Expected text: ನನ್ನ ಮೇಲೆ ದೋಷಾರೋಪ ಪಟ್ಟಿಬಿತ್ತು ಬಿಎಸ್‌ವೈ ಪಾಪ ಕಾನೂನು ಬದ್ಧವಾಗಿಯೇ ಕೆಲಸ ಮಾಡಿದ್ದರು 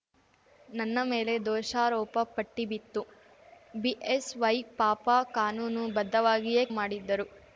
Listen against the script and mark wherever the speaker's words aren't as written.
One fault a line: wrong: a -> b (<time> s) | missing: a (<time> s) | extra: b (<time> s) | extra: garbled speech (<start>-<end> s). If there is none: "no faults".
missing: ಕೆಲಸ (6.7 s)